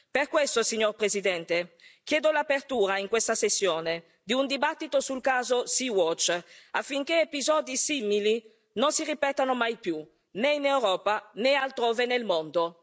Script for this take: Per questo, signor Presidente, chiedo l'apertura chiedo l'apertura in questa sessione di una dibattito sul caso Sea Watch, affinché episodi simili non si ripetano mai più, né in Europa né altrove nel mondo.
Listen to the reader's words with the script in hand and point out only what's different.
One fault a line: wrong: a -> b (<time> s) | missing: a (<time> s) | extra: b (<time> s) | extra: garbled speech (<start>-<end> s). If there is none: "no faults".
missing: chiedo l'apertura (3.0 s)
wrong: una -> un (4.3 s)